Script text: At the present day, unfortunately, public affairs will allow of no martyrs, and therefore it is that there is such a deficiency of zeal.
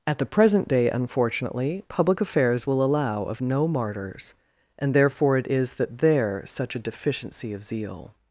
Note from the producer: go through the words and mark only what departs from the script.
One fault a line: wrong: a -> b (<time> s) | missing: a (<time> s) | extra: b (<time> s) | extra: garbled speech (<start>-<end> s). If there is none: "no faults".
missing: is (6.4 s)